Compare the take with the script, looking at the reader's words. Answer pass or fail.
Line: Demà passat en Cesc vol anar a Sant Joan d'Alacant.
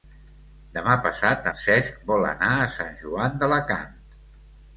pass